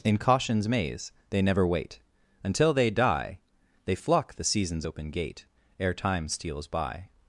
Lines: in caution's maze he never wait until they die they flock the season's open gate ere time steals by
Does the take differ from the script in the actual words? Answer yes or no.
yes